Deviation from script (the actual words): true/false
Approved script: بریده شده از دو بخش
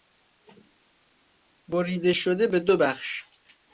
true